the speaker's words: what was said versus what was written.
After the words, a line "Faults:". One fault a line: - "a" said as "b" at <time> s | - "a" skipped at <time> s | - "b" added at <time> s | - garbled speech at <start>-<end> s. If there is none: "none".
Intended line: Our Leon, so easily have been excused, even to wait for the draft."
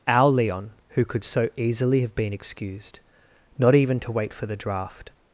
Our Leon, who could so easily have been excused, not even to wait for the draft."
Faults:
- "who could" added at 0.9 s
- "not" added at 3.6 s